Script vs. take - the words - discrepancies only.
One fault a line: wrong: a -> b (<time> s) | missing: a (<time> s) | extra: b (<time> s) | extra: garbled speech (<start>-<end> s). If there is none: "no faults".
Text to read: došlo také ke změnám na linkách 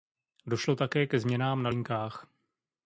no faults